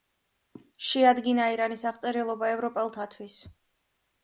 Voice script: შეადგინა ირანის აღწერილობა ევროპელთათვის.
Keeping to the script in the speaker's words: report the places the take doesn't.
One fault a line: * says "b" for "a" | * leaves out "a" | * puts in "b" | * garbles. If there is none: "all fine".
all fine